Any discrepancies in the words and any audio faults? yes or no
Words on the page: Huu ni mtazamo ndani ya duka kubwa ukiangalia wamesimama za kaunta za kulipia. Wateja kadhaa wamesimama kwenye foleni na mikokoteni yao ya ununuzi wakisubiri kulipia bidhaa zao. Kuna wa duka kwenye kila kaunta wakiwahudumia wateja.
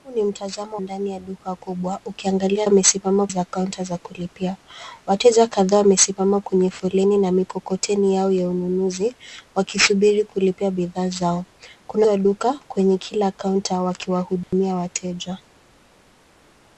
yes